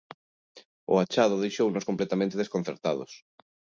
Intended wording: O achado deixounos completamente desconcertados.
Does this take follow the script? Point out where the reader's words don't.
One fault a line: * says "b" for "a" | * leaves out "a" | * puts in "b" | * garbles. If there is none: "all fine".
all fine